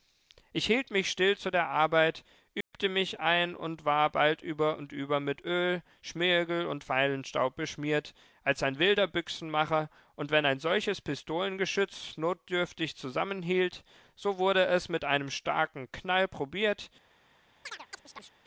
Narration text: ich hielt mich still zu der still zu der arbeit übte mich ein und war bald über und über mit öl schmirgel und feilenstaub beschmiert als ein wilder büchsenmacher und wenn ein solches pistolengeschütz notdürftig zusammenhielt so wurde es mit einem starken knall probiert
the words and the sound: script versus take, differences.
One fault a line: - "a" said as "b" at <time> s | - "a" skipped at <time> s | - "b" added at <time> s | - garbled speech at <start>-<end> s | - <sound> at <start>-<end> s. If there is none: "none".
- "still zu der" skipped at 1.7 s
- dropout at 2.6-2.7 s
- chirp at 17.6-18.4 s